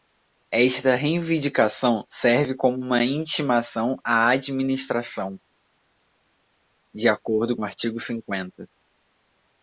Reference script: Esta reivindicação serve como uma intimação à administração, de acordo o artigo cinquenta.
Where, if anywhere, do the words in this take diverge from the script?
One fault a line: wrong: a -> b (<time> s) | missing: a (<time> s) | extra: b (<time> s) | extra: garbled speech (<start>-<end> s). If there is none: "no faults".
no faults